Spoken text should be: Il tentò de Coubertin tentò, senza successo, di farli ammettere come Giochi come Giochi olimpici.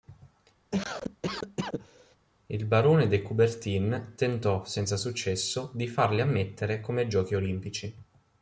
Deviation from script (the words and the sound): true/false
true